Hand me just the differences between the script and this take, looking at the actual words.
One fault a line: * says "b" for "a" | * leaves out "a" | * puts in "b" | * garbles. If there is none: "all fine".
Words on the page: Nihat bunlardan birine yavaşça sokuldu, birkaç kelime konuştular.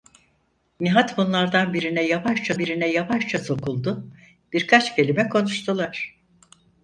* puts in "birine yavaşça"